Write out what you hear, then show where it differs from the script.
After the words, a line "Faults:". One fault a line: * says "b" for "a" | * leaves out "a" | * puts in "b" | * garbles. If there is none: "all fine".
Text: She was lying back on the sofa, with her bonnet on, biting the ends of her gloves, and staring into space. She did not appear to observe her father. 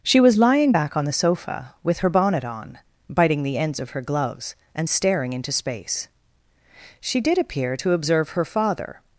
She was lying back on the sofa, with her bonnet on, biting the ends of her gloves, and staring into space. She did appear to observe her father.
Faults:
* leaves out "not"